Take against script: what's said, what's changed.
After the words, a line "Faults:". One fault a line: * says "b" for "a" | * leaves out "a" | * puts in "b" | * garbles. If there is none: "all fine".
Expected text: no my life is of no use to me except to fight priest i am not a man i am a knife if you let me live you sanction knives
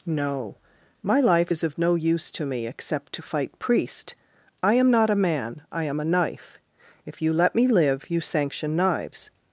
no my life is of no use to me except to fight priest i am not a man i am a knife if you let me live you sanction knives
Faults:
all fine